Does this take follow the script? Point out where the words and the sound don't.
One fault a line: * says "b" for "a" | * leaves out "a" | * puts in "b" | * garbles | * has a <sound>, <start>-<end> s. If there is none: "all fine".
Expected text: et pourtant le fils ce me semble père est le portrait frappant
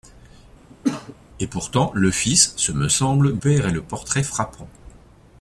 * has a cough, 0.7-1.2 s